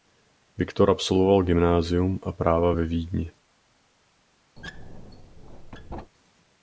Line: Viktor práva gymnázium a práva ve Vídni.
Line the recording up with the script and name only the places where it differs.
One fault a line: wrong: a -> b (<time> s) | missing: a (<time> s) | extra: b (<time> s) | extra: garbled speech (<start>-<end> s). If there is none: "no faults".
wrong: práva -> absolvoval (0.9 s)